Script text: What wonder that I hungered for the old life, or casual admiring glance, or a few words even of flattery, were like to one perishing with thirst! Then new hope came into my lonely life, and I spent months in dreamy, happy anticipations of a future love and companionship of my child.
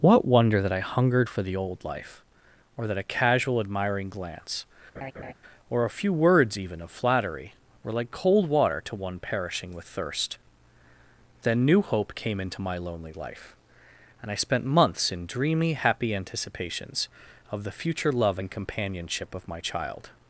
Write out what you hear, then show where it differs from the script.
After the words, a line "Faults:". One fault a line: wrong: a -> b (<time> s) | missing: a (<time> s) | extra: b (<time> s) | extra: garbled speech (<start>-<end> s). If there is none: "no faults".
What wonder that I hungered for the old life, or that a casual admiring glance, or a few words even of flattery, were like cold water to one perishing with thirst! Then new hope came into my lonely life, and I spent months in dreamy, happy anticipations of the future love and companionship of my child.
Faults:
extra: that a (2.9 s)
extra: cold water (8.1 s)
wrong: a -> the (17.6 s)